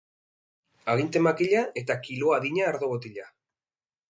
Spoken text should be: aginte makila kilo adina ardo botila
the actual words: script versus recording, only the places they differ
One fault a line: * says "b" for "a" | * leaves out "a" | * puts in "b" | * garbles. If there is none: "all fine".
* puts in "eta"